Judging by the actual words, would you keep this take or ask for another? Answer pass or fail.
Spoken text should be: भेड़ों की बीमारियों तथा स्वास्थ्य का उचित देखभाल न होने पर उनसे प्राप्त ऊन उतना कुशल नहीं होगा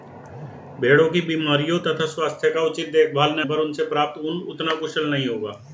fail